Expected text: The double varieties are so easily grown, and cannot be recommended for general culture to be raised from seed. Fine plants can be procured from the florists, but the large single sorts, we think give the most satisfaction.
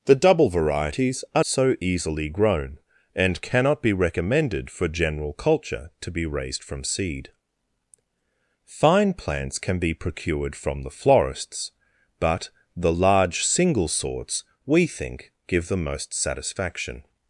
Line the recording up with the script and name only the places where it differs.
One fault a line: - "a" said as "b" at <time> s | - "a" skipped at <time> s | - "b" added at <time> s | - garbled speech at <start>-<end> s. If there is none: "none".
none